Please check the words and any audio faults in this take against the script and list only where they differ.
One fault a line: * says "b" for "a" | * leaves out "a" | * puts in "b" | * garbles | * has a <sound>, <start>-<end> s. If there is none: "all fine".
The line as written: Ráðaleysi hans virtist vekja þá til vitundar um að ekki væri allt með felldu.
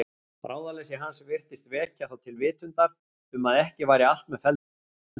all fine